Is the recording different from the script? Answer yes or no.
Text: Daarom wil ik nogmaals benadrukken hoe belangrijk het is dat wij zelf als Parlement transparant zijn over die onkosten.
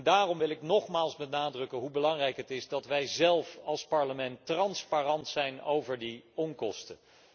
no